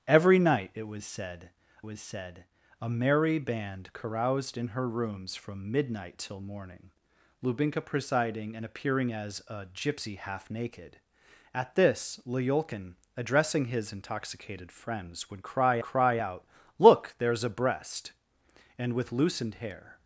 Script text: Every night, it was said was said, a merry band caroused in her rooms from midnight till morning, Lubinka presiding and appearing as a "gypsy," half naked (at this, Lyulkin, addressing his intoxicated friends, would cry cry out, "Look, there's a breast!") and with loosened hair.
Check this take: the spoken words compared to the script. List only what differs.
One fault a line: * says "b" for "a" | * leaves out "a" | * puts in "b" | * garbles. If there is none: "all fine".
all fine